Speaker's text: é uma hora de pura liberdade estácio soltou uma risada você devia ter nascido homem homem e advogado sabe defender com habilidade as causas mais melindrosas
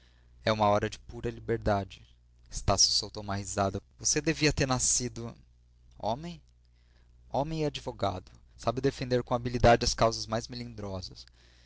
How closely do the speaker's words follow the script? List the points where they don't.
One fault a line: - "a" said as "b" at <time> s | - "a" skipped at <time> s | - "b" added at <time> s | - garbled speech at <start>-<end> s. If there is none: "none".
none